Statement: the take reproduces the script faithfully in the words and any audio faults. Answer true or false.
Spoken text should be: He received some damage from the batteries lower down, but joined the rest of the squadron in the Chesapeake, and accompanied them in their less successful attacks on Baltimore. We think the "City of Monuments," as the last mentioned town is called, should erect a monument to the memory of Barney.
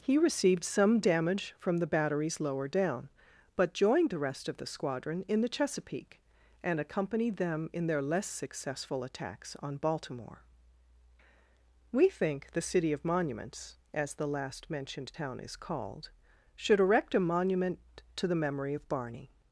true